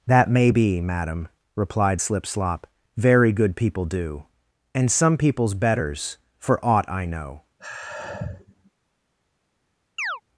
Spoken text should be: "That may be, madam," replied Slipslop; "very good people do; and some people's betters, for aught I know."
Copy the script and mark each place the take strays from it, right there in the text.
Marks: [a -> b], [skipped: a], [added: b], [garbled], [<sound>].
"That may be, madam," replied Slipslop; "very good people do; and some people's betters, for aught I know." [sigh] [chirp]